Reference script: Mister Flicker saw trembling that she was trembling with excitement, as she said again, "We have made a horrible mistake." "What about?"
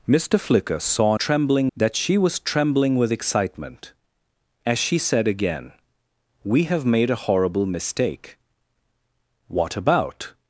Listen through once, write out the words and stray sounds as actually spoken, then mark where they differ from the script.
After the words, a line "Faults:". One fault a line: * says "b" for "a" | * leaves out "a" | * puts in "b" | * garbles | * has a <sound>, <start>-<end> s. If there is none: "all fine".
Mister Flicker saw trembling that she was trembling with excitement, as she said again, "We have made a horrible mistake." "What about?"
Faults:
all fine